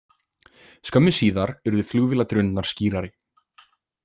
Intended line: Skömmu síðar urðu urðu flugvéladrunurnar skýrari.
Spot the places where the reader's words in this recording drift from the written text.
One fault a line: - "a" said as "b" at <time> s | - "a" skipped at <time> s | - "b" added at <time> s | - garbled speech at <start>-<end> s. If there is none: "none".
- "urðu" skipped at 1.9 s